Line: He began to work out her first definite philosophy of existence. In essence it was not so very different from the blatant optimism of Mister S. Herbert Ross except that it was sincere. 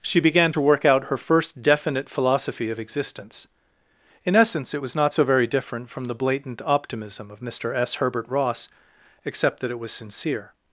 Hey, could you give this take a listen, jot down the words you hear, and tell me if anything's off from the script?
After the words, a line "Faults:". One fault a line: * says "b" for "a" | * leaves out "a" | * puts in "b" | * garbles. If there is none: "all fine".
She began to work out her first definite philosophy of existence. In essence it was not so very different from the blatant optimism of Mister S. Herbert Ross except that it was sincere.
Faults:
* says "She" for "He"